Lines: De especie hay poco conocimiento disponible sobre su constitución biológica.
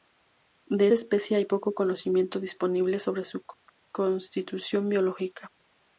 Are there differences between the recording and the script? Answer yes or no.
no